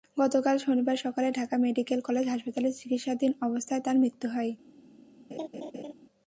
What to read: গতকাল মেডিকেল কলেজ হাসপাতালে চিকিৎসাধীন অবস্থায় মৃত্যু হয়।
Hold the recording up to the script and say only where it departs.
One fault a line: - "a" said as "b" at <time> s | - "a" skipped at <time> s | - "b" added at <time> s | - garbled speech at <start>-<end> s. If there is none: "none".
- "শনিবার সকালে ঢাকা" added at 0.6 s
- "তাঁর" added at 3.9 s